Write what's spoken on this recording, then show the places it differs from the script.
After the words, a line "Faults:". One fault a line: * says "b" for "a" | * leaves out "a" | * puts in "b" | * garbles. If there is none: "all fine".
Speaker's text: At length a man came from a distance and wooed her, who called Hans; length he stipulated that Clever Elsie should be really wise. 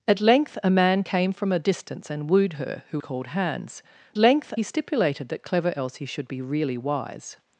At length a man came from a distance and wooed her, who called Hans; length he stipulated that Clever Elsie should be really wise.
Faults:
all fine